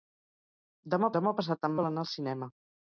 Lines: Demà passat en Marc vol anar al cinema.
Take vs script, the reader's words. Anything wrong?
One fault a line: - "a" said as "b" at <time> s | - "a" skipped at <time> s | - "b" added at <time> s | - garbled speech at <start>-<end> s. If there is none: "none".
- "demà" added at 1.2 s
- "Marc" skipped at 1.8 s